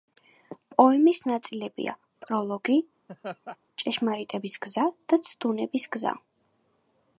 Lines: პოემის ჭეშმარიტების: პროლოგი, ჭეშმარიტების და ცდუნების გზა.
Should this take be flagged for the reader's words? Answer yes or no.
yes